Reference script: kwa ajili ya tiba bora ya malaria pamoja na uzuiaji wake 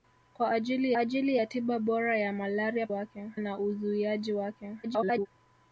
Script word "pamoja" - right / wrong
wrong